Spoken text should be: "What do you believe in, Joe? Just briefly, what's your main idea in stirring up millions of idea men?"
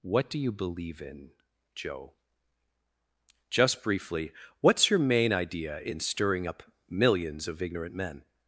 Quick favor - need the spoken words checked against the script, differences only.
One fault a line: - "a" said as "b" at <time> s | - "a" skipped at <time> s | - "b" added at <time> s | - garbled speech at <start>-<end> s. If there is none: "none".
- "idea" said as "ignorant" at 7.6 s